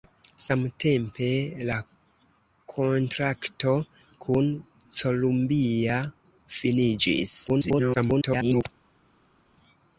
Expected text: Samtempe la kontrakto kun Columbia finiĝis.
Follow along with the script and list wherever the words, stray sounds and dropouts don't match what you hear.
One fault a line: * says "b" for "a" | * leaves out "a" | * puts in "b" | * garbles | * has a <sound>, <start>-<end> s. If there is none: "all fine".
* garbles